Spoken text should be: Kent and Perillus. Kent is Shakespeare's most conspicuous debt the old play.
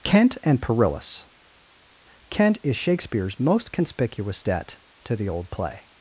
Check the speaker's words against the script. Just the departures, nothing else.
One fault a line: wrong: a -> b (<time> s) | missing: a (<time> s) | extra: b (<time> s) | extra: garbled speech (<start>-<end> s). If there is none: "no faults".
extra: to (5.0 s)